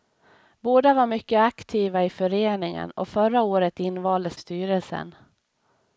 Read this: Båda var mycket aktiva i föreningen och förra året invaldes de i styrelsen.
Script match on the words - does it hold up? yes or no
no